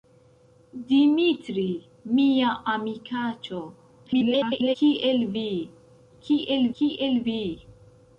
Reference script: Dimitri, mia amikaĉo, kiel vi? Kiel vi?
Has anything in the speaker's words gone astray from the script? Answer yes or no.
yes